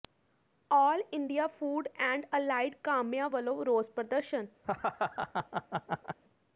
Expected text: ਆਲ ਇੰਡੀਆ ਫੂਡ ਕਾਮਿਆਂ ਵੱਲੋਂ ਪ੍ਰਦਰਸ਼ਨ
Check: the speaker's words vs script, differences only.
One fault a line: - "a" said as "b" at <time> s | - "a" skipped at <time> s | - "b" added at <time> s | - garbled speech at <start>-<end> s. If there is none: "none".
- "ਐਂਡ ਅਲਾਈਡ" added at 2.0 s
- "ਰੋਸ" added at 3.6 s